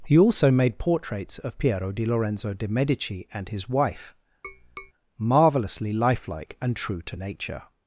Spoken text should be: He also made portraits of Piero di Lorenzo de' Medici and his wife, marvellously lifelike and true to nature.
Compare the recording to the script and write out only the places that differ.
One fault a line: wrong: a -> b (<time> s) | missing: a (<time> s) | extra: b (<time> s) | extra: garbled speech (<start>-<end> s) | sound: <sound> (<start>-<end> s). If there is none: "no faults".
sound: tap (4.4-4.9 s)